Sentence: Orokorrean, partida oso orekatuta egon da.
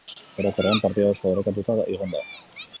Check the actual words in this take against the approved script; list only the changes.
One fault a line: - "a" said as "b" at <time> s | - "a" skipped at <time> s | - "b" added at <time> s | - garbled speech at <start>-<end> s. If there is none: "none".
none